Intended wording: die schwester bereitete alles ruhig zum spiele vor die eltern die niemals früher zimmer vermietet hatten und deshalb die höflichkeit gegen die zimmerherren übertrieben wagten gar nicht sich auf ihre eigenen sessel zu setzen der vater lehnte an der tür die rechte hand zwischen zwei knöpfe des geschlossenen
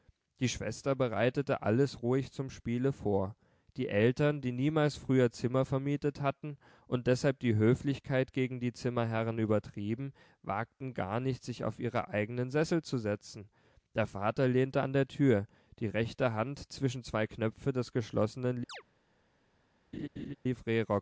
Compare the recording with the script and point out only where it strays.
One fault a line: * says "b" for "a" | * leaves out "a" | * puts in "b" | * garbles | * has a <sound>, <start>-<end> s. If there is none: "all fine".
* has a chirp, 18.7-18.8 s
* has a laugh, 19.9-20.4 s